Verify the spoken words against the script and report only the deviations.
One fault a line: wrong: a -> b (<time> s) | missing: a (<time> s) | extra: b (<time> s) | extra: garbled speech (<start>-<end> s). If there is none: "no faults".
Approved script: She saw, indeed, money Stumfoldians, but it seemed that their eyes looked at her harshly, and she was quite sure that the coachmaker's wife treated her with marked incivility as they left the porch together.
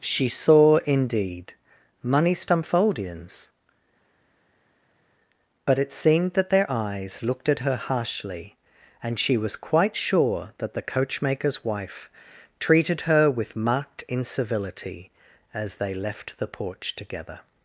no faults